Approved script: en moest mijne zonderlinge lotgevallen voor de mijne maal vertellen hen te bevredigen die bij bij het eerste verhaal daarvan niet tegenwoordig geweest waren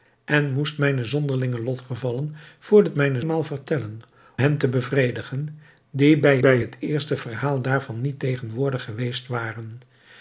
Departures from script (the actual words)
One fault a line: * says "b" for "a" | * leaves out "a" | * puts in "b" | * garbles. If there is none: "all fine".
all fine